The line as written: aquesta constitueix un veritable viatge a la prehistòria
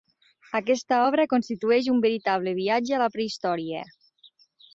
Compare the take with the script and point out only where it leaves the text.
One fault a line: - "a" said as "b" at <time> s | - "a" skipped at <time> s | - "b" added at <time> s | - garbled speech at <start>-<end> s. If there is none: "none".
- "obra" added at 1.1 s